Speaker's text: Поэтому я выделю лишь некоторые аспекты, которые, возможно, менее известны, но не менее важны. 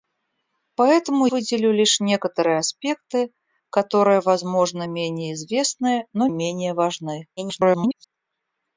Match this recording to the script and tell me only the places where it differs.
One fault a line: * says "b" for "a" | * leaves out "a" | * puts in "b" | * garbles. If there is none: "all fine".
* leaves out "я"
* leaves out "не"
* garbles